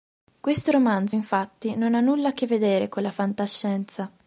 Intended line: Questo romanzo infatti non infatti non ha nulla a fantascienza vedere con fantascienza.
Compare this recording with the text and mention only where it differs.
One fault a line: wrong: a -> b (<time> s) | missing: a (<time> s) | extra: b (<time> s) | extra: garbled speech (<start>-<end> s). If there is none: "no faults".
missing: infatti non (2.0 s)
wrong: fantascienza -> che (2.3 s)
extra: la (3.0 s)